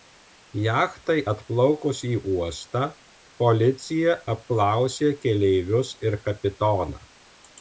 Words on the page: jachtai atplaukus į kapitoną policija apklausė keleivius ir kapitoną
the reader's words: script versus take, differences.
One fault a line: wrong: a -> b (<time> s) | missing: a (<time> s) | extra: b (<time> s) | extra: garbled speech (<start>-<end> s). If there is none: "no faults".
wrong: kapitoną -> uostą (2.3 s)